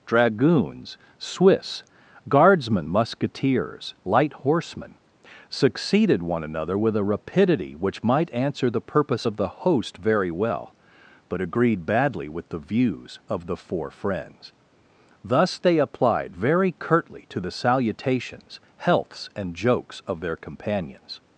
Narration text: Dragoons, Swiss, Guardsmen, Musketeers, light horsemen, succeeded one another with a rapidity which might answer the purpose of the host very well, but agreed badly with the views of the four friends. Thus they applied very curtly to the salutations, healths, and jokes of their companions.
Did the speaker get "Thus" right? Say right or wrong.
right